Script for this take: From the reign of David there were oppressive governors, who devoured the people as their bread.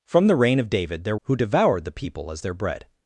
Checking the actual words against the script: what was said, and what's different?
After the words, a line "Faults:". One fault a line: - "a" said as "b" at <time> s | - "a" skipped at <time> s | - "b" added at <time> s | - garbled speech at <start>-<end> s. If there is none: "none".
From the reign of David there who devoured the people as their bread.
Faults:
- "were oppressive governors" skipped at 1.2 s